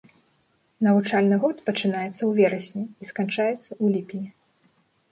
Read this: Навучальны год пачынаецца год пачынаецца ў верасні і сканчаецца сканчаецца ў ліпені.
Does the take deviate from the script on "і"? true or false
false